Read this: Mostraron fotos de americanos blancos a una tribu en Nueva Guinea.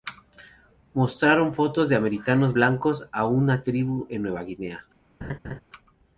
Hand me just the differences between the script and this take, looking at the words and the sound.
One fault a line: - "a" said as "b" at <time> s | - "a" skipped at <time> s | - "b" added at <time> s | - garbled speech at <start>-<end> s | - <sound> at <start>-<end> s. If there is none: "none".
- laugh at 5.2-5.6 s